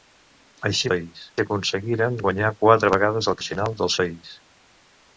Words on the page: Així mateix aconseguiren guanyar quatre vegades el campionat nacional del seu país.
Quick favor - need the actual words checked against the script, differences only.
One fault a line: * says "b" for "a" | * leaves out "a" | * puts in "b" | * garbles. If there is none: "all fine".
* says "país" for "mateix"
* leaves out "campionat"
* leaves out "seu"